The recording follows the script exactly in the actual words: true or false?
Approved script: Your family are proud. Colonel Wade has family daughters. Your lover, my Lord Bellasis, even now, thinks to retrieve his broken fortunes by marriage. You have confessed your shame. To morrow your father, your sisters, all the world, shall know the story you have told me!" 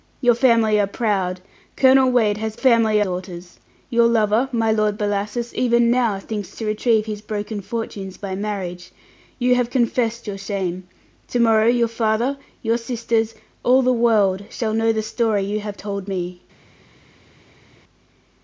true